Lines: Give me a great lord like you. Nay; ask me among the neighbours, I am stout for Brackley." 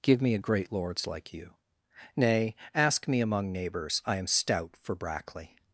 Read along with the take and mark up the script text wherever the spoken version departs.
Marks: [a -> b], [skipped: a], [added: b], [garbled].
Give me a great [lord -> lords] like you. Nay; ask me among [skipped: the] neighbours, I am stout for Brackley."